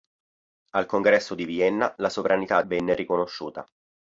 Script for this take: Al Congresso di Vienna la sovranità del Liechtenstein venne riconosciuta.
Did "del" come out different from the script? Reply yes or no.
yes